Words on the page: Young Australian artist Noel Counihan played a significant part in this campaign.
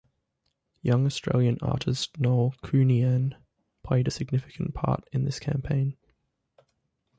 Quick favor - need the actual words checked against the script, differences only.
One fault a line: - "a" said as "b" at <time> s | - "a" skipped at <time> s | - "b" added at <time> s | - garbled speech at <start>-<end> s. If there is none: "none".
none